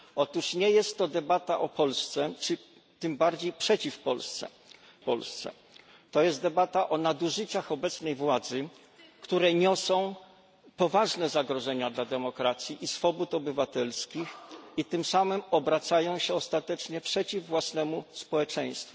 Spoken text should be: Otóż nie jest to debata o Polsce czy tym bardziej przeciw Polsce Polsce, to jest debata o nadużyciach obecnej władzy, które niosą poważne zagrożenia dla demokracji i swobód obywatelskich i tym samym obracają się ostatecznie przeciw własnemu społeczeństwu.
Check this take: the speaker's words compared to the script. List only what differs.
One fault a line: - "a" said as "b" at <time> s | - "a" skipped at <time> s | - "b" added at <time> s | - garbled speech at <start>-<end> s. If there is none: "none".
none